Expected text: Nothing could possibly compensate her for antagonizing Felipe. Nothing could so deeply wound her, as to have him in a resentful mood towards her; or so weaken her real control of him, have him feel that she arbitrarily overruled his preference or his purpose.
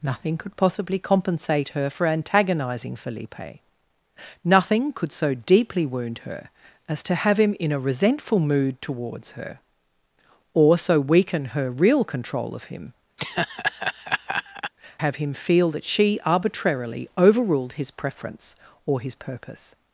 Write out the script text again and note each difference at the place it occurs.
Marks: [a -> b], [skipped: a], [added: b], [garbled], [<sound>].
Nothing could possibly compensate her for antagonizing Felipe. Nothing could so deeply wound her, as to have him in a resentful mood towards her; or so weaken her real control of him, [laugh] have him feel that she arbitrarily overruled his preference or his purpose.